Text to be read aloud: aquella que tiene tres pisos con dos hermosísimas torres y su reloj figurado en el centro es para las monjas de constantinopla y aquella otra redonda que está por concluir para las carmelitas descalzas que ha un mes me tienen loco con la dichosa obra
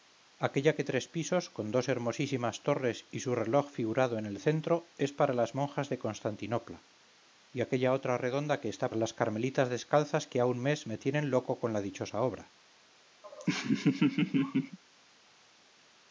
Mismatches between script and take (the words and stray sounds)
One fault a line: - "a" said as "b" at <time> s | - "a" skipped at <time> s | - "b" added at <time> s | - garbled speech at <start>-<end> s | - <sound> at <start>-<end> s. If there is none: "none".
- "tiene" skipped at 0.8 s
- "por concluir para" skipped at 8.9 s
- laugh at 13.2-14.8 s